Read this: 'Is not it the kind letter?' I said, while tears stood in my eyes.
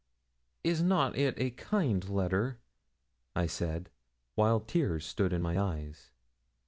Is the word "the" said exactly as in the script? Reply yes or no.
no